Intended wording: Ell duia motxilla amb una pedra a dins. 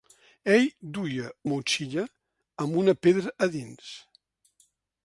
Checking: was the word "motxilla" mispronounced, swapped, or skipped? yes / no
no